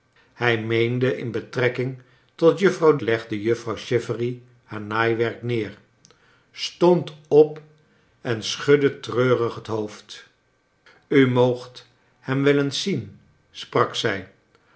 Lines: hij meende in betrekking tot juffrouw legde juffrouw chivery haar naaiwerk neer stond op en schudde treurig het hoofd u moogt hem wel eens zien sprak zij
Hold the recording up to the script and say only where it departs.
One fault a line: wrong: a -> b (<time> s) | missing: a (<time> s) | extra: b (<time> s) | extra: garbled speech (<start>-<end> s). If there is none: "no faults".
no faults